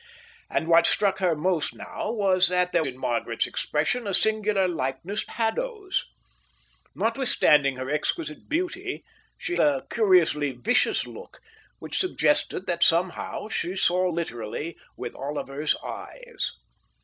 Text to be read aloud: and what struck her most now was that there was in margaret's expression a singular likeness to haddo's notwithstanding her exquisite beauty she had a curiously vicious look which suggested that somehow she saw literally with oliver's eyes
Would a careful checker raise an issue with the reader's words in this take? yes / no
yes